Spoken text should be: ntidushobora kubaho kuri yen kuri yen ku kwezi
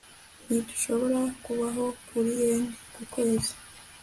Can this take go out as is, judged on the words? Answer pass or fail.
fail